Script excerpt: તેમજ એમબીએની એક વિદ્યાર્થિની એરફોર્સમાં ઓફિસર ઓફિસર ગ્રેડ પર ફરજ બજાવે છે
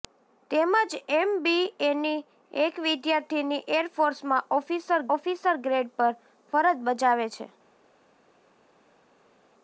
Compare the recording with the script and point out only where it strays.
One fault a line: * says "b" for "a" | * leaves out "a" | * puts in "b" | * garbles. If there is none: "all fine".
all fine